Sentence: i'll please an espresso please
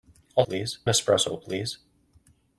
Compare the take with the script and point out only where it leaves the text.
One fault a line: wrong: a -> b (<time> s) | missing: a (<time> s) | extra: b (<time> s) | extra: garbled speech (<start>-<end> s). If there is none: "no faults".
no faults